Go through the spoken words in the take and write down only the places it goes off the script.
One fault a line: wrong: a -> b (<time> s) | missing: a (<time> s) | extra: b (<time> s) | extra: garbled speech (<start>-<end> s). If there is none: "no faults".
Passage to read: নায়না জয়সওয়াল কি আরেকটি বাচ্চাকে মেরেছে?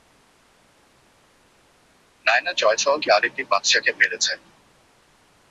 no faults